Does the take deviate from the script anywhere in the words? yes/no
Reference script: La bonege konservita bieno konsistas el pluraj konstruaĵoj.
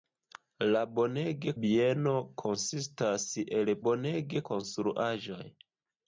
yes